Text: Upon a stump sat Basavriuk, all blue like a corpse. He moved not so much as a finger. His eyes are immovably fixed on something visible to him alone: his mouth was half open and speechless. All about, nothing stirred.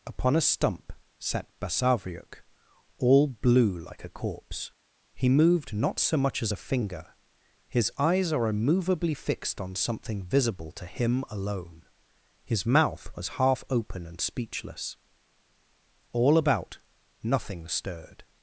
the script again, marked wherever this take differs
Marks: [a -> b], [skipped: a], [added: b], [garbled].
Upon a stump sat Basavriuk, all blue like a corpse. He moved not so much as a finger. His eyes are immovably fixed on something visible to him alone: his mouth was half open and speechless. All about, nothing stirred.